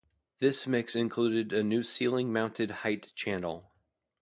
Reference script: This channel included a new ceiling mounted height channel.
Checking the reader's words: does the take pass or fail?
fail